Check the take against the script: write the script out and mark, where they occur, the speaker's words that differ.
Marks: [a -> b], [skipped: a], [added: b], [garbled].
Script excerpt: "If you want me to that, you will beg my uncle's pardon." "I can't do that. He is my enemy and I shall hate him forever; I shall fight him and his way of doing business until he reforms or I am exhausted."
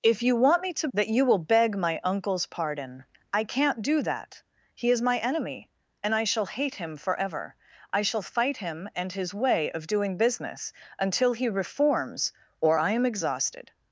"If you want me to that, you will beg my uncle's pardon." "I can't do that. He is my enemy and I shall hate him forever; I shall fight him and his way of doing business until he reforms or I am exhausted."